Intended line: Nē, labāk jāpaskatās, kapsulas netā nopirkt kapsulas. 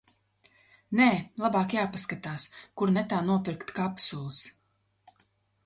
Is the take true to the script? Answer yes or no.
no